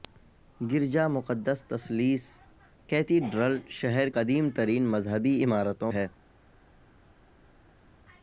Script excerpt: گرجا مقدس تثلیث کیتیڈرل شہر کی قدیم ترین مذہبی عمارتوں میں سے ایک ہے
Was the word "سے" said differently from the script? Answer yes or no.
yes